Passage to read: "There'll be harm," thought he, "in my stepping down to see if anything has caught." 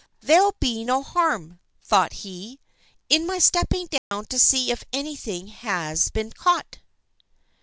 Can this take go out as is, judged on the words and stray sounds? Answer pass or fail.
fail